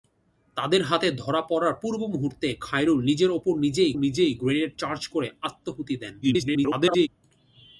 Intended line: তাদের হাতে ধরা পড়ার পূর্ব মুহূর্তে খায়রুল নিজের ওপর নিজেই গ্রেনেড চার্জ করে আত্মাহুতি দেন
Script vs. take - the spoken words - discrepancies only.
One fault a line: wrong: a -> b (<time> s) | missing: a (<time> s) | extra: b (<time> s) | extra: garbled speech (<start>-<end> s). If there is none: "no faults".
extra: নিজেই (4.0 s)
extra: garbled speech (6.2-7.1 s)